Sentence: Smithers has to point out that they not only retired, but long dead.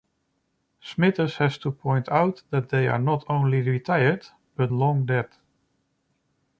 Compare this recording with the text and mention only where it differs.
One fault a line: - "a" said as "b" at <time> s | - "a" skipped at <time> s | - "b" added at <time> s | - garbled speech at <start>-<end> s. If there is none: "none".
- "are" added at 2.9 s